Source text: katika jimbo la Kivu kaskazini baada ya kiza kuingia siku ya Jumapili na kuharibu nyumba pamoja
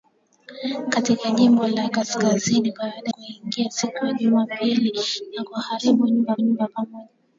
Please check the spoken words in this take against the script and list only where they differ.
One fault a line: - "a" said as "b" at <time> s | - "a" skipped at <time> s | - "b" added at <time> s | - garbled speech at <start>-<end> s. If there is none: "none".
- "Kivu" skipped at 1.9 s
- "ya kiza" skipped at 3.1 s
- "nyumba" added at 6.4 s